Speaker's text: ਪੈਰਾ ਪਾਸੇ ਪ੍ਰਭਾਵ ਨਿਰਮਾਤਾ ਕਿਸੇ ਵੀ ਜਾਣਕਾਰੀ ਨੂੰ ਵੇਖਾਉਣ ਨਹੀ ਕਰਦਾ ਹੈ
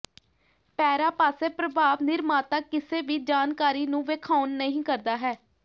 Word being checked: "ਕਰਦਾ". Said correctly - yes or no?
yes